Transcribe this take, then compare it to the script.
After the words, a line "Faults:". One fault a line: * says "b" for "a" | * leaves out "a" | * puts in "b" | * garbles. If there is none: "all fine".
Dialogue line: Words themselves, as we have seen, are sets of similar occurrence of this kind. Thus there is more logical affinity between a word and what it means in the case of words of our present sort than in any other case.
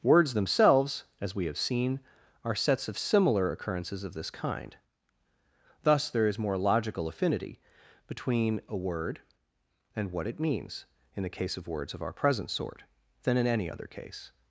Words themselves, as we have seen, are sets of similar occurrences of this kind. Thus there is more logical affinity between a word and what it means in the case of words of our present sort than in any other case.
Faults:
* says "occurrences" for "occurrence"